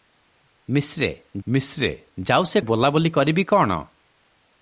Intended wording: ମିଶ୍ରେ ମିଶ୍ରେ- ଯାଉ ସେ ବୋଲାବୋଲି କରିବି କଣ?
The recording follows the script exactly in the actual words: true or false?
true